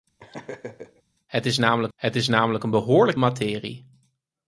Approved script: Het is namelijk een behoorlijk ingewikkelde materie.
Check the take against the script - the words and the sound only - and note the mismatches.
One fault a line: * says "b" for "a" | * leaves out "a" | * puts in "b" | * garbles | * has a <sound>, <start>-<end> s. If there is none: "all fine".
* has a laugh, 0.2-1.0 s
* puts in "het is namelijk"
* leaves out "ingewikkelde"